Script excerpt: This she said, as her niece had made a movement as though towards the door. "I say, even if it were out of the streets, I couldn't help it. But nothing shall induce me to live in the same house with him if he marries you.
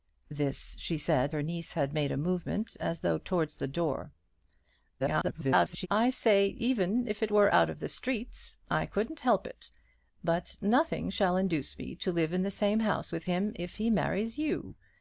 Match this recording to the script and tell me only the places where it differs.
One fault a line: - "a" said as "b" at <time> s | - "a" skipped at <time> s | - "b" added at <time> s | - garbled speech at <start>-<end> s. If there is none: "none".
- "as" skipped at 1.4 s
- garbled speech at 5.0-5.9 s